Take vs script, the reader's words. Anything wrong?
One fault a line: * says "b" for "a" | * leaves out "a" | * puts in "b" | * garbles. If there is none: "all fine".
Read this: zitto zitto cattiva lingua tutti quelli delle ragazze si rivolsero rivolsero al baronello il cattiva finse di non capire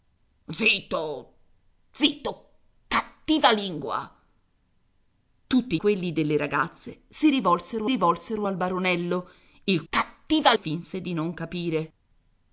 all fine